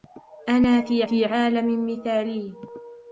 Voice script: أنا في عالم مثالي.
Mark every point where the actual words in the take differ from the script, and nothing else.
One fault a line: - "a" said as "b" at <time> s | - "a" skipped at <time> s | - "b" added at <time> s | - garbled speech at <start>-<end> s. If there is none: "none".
- "في" added at 1.0 s